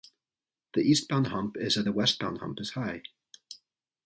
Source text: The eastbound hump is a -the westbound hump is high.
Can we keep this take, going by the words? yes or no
yes